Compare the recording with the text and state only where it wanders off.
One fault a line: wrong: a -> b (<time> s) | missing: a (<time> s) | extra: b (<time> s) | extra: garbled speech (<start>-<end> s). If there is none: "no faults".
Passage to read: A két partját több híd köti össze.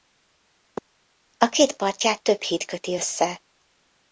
no faults